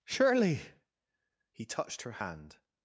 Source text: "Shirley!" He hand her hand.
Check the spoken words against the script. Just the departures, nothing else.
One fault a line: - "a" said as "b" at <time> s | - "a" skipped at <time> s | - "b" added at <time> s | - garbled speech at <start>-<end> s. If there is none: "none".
- "hand" said as "touched" at 1.6 s